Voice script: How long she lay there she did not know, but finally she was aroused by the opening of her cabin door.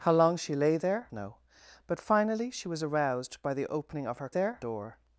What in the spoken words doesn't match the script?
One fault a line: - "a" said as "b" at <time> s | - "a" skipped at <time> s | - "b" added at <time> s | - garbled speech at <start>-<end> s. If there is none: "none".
- "she did not" skipped at 1.1 s
- "cabin" said as "there" at 4.3 s